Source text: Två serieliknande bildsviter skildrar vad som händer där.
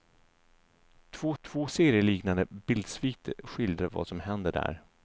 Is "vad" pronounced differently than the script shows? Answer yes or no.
no